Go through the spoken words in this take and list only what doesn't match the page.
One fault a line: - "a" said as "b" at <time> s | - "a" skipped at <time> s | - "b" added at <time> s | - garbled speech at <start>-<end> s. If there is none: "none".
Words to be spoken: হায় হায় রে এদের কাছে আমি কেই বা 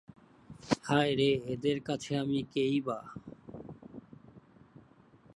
- "হায়" skipped at 1.1 s